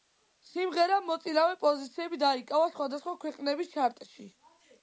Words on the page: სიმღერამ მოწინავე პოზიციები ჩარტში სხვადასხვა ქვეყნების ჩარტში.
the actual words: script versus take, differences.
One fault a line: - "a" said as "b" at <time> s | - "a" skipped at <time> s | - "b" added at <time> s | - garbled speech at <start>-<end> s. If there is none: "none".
- "ჩარტში" said as "დაიკავა" at 2.2 s